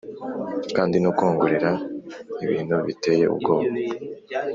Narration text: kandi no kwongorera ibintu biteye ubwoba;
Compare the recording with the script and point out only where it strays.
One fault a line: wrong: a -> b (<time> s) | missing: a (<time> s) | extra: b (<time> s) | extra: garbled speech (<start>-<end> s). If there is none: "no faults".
no faults